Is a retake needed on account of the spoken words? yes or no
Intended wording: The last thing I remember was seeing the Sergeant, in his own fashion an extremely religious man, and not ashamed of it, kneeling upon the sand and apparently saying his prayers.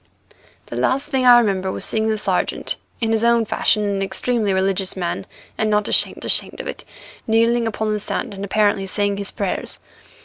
yes